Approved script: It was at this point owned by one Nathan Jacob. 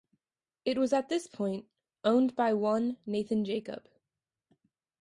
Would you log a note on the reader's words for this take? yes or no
no